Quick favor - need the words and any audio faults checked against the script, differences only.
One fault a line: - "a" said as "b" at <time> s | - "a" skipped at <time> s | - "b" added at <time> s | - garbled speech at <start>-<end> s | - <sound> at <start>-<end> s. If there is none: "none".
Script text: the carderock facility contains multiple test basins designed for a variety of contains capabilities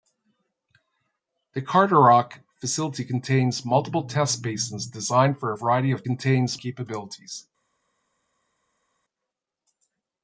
none